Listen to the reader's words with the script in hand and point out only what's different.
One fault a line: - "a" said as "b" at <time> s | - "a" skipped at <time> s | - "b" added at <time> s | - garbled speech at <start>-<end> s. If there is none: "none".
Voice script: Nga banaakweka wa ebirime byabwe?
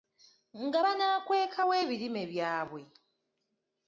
none